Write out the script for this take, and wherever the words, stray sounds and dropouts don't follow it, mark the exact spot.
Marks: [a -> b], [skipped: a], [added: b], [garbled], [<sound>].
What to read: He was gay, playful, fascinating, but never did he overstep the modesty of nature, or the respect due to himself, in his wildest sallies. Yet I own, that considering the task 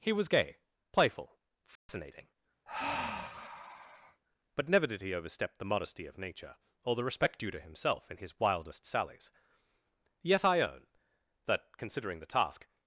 He was gay, playful, fascinating, [dropout] [sigh] but never did he overstep the modesty of nature, or the respect due to himself, in his wildest sallies. Yet I own, that considering the task